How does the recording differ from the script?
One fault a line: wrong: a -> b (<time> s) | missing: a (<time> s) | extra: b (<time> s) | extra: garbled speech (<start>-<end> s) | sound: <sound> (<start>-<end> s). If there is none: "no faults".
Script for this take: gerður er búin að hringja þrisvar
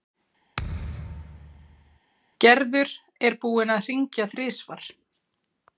sound: thud (0.6-2.0 s)